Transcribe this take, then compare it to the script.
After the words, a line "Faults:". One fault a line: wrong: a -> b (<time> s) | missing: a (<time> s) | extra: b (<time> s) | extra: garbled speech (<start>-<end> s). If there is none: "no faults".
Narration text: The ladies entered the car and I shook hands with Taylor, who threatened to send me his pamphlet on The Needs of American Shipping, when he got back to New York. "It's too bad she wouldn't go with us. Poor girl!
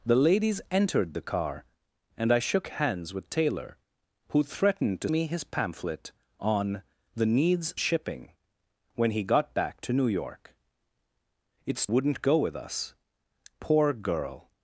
The ladies entered the car and I shook hands with Taylor, who threatened to me his pamphlet on The Needs Shipping, when he got back to New York. "It's wouldn't go with us. Poor girl!
Faults:
missing: send (5.1 s)
missing: of American (7.7 s)
missing: too bad she (11.9 s)